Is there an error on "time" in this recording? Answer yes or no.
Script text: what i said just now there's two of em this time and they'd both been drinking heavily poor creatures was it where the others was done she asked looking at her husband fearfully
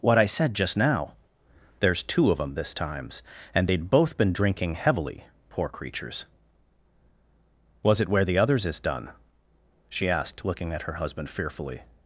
yes